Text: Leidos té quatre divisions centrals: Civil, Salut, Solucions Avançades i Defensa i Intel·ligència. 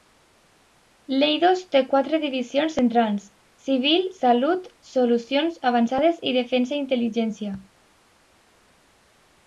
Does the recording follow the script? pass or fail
pass